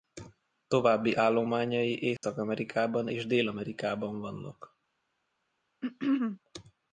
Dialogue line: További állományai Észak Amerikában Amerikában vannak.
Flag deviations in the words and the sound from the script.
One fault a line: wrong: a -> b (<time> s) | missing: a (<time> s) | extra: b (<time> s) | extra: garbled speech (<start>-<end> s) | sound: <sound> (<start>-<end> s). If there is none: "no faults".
sound: dropout (2.2-2.2 s)
extra: és Dél (3.1 s)
sound: throat clearing (5.8-6.4 s)